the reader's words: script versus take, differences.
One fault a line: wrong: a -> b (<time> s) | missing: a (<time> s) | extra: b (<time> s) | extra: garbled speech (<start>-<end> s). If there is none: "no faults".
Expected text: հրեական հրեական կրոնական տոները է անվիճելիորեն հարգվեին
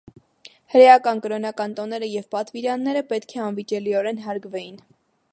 missing: հրեական (1.2 s)
extra: և պատվիրանները պետք (2.1 s)